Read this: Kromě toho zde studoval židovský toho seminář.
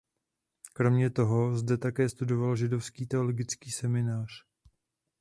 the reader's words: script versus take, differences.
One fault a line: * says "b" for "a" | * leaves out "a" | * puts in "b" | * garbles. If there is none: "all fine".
* puts in "také"
* says "teologický" for "toho"